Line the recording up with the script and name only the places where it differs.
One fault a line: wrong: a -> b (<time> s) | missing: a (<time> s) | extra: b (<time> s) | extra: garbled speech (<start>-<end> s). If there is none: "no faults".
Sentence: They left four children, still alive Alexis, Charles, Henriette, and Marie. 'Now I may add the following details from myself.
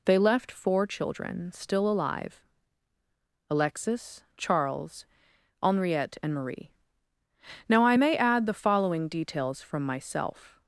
no faults